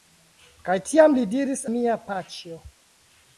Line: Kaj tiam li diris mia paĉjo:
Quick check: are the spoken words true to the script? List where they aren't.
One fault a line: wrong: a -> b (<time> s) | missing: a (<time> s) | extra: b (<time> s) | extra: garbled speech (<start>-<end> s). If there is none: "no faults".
no faults